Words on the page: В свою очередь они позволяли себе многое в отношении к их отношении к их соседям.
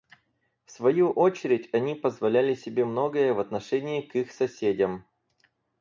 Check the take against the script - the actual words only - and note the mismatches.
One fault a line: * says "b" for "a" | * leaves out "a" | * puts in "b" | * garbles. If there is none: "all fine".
* leaves out "отношении к их"